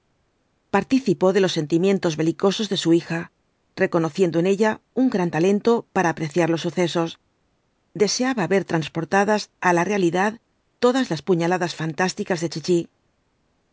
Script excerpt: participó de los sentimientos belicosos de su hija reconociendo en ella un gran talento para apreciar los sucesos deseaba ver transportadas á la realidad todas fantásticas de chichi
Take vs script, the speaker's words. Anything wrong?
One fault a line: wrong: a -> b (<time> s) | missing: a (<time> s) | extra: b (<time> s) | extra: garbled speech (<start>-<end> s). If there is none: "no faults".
extra: las puñaladas (11.1 s)